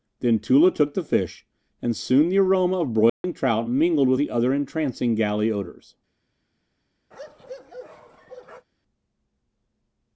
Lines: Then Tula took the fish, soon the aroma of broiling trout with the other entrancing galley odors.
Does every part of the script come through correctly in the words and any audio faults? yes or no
no